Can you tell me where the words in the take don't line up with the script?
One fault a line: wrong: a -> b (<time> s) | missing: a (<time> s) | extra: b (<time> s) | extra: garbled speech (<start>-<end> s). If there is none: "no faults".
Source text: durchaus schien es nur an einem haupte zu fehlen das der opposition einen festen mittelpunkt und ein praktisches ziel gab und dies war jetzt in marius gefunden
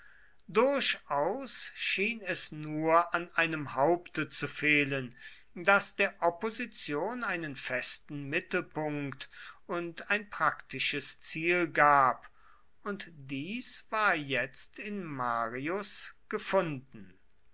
no faults